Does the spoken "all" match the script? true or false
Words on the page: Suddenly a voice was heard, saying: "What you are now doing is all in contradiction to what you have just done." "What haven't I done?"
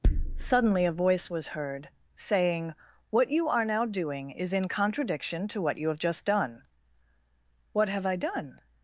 false